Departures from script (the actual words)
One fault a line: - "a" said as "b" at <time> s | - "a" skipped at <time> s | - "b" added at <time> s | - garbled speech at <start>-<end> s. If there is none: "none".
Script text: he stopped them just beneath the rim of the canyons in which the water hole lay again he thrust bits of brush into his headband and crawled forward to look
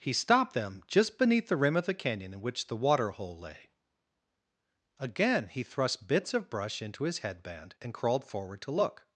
- "canyons" said as "canyon" at 1.9 s